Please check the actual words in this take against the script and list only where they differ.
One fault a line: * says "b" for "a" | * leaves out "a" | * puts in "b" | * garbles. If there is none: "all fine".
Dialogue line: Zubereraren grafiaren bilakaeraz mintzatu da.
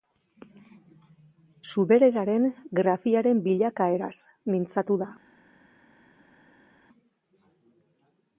all fine